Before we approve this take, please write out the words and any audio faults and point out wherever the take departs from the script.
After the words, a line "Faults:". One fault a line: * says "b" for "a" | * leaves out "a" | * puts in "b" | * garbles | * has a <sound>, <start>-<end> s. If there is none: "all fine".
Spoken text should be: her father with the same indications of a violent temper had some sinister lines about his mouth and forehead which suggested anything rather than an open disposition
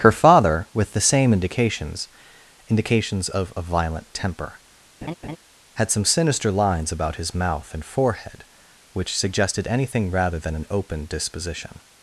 her father with the same indications indications of a violent temper had some sinister lines about his mouth and forehead which suggested anything rather than an open disposition
Faults:
* puts in "indications"
* has a laugh, 5.0-5.4 s